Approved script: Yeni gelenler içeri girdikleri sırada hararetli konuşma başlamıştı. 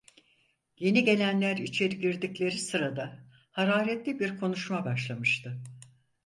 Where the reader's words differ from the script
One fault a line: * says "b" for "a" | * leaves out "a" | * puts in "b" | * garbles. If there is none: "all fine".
* puts in "bir"